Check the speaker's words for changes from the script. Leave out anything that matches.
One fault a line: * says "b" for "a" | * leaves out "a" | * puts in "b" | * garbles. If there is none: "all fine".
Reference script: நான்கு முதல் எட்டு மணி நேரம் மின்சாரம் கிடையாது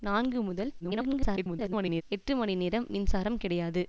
* garbles